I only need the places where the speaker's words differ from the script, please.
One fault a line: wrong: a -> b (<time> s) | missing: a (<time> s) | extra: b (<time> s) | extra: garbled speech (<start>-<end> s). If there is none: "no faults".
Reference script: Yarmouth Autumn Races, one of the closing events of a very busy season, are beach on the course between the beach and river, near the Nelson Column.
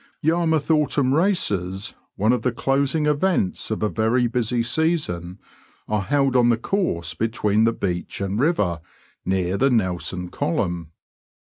wrong: beach -> held (6.0 s)